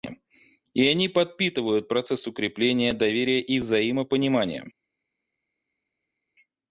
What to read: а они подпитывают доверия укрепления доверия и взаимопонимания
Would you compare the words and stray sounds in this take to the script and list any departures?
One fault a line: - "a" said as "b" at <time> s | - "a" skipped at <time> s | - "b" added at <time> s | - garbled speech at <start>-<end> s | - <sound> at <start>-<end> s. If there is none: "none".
- "а" said as "и" at 0.7 s
- "доверия" said as "процесс" at 1.9 s